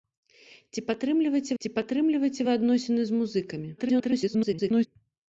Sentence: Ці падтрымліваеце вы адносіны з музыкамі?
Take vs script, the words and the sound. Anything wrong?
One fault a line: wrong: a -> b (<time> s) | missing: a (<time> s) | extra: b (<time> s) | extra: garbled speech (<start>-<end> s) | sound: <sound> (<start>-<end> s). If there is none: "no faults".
extra: ці падтрымліваеце (1.6 s)
extra: garbled speech (3.8-4.9 s)